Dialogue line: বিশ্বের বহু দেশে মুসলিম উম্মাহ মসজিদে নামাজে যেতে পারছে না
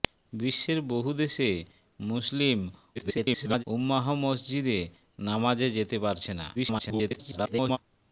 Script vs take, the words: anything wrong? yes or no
yes